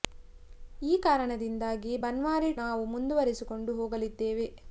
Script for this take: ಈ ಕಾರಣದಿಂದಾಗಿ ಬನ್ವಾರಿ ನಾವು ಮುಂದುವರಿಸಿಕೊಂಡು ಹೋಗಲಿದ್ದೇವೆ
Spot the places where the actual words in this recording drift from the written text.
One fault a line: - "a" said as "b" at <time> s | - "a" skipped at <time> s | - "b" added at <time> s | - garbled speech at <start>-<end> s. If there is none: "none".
none